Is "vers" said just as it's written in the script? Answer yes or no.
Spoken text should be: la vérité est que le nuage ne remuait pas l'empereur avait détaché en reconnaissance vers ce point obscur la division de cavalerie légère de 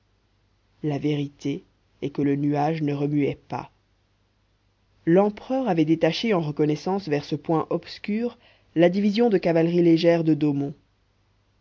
yes